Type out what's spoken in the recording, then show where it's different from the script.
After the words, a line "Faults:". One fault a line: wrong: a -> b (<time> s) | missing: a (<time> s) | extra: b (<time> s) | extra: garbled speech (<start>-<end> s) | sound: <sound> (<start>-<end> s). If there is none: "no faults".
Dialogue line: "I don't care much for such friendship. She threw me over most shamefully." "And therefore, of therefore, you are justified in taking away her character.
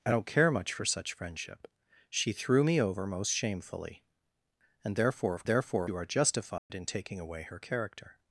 "I don't care much for such friendship. She threw me over most shamefully." "And therefore, of therefore, you are justified in taking away her character.
Faults:
sound: dropout (6.6-6.7 s)